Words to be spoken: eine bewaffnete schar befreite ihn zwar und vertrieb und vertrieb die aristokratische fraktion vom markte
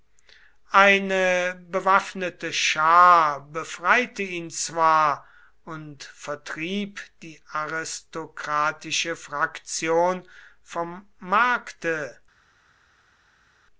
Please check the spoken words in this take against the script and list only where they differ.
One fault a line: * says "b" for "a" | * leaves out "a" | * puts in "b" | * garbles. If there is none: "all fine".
* leaves out "und vertrieb"